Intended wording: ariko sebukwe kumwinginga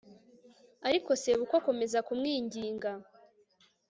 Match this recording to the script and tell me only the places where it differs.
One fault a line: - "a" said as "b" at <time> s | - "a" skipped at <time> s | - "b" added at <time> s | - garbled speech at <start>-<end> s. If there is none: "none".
- "akomeza" added at 1.6 s